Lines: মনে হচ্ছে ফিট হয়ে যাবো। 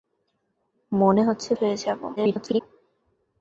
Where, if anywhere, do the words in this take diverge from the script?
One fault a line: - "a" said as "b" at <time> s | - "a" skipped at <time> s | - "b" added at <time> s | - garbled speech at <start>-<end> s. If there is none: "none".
- "ফিট" skipped at 1.5 s
- garbled speech at 2.2-2.6 s